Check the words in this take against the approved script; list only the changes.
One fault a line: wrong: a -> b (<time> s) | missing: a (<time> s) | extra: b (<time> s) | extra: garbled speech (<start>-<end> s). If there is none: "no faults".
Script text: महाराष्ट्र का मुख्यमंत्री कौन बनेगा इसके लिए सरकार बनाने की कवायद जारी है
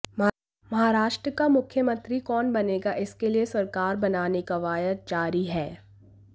missing: की (4.4 s)